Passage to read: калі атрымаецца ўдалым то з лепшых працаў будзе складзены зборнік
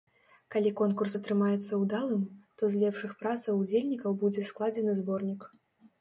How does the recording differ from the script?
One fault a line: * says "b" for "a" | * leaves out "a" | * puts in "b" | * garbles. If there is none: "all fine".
* puts in "конкурс"
* puts in "удзельнікаў"